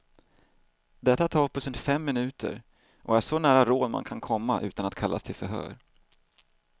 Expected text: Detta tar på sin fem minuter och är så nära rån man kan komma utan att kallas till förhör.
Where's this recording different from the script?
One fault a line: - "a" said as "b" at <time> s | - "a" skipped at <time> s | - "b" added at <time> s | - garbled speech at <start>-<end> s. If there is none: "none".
none